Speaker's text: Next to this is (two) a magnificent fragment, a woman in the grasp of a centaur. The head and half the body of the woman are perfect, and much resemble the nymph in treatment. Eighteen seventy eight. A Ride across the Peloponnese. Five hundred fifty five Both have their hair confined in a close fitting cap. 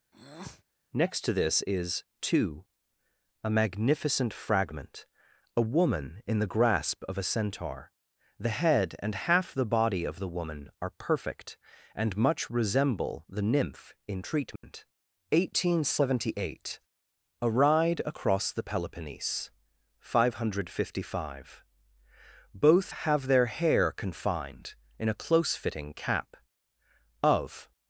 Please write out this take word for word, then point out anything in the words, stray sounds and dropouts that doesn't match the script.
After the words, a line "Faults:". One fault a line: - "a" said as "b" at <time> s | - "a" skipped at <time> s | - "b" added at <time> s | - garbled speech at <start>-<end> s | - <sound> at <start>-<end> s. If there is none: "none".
Next to this is (two) a magnificent fragment, a woman in the grasp of a centaur. The head and half the body of the woman are perfect, and much resemble the nymph in treatment. Eighteen seventy eight. A Ride across the Peloponnese. Five hundred fifty five Both have their hair confined in a close fitting cap. Of
Faults:
- breath at 0.1-0.6 s
- dropout at 14.6-14.6 s
- "Of" added at 27.2 s